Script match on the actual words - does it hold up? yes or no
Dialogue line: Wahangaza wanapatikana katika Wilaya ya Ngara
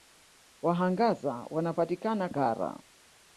no